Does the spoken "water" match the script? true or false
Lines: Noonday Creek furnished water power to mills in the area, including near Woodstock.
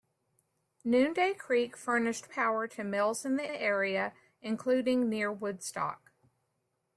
false